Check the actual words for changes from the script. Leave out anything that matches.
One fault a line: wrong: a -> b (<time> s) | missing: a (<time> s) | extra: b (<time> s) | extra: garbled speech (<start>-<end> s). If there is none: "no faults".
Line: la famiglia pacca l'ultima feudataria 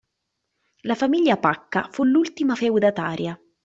extra: fu (1.9 s)